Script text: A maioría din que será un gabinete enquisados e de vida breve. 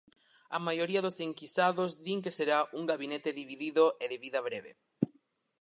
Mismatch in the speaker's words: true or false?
true